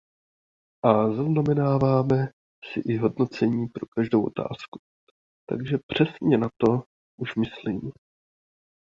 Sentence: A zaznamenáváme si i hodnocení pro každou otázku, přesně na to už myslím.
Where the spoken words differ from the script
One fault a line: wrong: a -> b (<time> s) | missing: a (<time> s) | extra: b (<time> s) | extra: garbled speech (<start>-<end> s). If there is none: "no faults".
extra: takže (5.5 s)